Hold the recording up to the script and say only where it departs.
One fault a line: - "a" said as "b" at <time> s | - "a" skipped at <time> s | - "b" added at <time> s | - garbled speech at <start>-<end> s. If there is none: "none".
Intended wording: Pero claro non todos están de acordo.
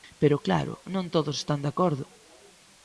none